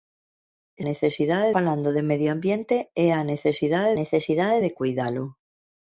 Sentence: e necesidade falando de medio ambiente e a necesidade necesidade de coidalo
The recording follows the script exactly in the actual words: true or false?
true